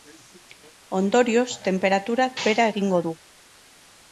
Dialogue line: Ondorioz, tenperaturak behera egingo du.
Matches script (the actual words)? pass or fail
pass